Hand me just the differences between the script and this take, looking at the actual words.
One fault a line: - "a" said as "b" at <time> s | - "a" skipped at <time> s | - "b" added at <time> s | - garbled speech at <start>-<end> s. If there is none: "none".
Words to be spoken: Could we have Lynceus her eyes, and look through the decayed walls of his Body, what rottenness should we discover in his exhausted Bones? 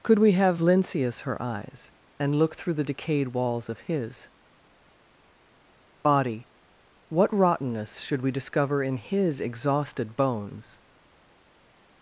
none